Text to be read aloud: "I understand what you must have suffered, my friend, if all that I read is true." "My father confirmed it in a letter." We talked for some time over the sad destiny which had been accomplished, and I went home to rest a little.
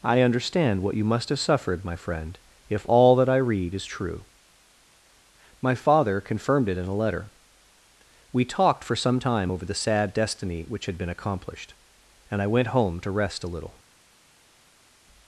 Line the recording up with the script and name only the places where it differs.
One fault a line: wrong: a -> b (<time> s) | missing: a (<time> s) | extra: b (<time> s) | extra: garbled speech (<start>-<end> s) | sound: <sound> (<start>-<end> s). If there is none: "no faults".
no faults